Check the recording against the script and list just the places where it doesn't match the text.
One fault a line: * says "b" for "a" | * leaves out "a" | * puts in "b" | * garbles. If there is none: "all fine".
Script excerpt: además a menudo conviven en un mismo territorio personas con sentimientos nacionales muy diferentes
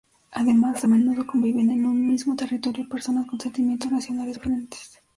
* leaves out "muy"